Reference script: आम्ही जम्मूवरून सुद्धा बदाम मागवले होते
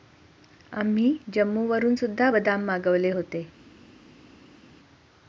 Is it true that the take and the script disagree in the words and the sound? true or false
false